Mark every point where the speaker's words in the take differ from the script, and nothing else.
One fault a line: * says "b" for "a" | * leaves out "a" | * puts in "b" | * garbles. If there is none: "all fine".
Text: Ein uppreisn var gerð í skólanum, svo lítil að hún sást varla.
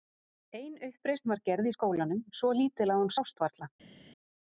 all fine